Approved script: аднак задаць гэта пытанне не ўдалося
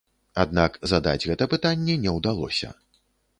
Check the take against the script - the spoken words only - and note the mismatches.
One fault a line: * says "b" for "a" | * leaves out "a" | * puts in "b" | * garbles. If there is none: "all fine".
all fine